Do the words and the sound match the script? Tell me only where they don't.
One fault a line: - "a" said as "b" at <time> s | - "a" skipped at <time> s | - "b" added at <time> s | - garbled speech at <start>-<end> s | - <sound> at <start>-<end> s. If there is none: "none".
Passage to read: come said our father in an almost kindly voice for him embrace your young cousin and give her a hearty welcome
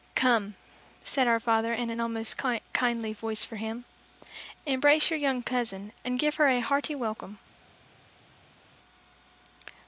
none